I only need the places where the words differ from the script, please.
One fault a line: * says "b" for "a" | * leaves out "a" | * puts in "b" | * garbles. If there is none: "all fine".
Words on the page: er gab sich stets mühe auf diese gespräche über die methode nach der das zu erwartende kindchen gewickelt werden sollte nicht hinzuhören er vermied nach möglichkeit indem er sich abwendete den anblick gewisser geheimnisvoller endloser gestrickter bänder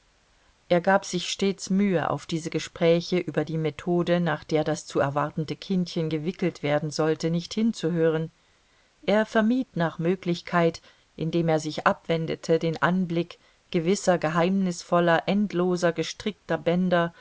all fine